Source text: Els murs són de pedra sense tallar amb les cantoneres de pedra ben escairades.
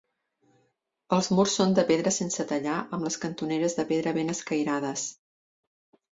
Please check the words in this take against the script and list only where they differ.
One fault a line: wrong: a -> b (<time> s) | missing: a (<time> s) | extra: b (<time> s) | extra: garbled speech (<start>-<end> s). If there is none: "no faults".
no faults